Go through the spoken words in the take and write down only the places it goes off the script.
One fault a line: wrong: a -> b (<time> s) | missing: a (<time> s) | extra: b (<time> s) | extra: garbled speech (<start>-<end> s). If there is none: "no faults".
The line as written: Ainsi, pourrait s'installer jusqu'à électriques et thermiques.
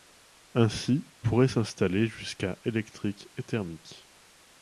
no faults